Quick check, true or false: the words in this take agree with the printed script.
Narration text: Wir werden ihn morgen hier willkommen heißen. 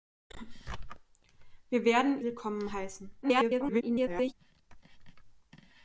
false